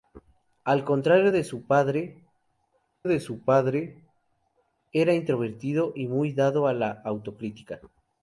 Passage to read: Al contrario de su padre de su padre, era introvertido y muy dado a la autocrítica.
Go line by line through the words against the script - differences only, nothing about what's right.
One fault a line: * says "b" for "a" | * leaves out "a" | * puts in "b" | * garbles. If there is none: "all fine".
all fine